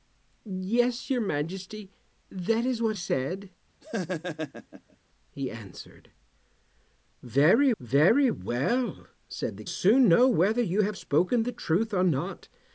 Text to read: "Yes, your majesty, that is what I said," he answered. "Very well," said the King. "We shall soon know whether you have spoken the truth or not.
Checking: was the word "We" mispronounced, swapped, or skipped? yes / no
yes